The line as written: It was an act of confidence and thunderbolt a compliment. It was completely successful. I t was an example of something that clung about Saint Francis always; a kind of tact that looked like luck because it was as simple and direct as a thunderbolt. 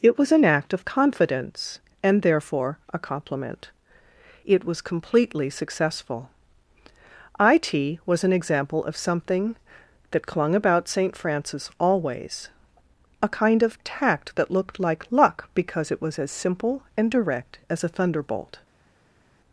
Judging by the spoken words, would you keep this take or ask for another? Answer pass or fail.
fail